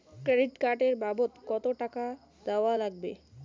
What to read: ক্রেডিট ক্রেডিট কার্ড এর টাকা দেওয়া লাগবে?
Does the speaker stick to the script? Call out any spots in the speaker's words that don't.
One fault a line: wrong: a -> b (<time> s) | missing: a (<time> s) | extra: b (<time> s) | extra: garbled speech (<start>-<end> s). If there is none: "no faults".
missing: ক্রেডিট (0.5 s)
extra: বাবদ কতো (1.0 s)